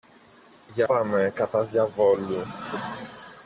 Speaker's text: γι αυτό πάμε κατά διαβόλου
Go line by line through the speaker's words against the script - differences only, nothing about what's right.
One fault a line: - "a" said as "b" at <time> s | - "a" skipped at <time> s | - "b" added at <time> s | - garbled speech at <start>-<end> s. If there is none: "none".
- "αυτό" skipped at 0.8 s